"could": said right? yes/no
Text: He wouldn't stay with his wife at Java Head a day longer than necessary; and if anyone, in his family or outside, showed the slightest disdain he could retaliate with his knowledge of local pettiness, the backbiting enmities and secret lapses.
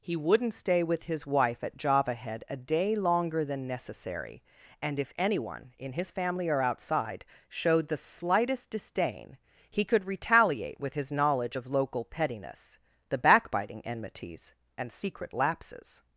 yes